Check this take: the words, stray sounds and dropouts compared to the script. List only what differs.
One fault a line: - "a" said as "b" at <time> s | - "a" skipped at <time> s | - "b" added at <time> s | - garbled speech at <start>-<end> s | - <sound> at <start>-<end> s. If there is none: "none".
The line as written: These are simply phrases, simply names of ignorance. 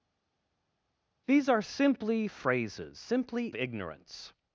- "names of" skipped at 3.5 s